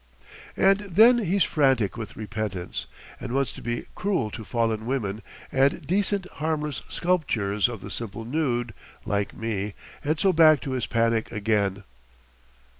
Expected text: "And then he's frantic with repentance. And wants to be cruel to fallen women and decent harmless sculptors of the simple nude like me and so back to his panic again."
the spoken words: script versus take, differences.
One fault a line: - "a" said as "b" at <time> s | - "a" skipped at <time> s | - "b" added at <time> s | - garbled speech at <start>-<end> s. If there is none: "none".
none